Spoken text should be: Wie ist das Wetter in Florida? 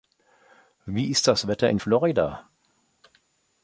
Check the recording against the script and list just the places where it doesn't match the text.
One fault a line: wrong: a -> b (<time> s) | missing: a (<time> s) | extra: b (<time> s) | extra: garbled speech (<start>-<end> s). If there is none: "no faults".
no faults